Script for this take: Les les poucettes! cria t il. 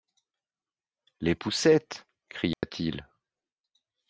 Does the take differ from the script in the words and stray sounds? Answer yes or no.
yes